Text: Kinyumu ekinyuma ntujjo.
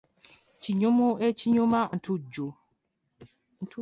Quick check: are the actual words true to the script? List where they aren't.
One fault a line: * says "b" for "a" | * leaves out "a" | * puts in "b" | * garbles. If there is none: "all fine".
all fine